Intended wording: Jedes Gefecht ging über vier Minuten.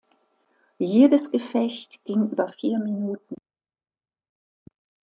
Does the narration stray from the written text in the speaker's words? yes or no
no